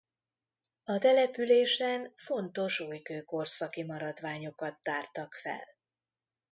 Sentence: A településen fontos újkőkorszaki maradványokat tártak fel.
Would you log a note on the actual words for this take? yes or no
no